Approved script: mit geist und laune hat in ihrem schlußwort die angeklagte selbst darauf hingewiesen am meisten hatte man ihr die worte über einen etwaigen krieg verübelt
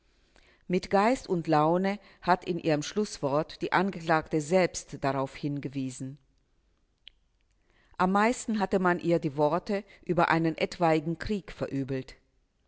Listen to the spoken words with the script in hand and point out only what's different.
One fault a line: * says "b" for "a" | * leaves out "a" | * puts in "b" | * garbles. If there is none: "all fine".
all fine